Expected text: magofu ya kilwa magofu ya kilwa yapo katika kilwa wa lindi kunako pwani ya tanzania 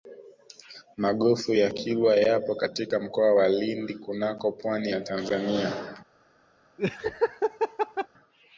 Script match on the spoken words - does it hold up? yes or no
no